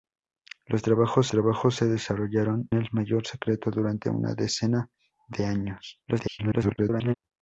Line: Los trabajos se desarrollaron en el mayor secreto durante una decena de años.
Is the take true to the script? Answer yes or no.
no